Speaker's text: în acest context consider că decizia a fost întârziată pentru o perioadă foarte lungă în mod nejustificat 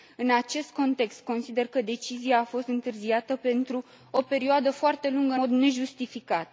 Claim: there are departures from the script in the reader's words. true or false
true